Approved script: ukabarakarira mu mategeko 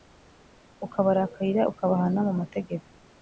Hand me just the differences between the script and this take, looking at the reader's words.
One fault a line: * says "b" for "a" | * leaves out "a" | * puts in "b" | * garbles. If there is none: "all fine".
* puts in "ukabahana"